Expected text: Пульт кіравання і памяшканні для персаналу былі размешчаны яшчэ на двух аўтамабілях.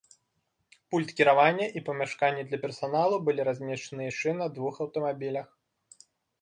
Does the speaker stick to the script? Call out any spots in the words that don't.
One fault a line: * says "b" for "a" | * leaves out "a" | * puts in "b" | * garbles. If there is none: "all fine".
all fine